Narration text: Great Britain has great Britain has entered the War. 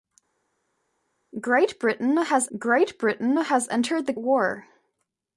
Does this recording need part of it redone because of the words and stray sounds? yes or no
no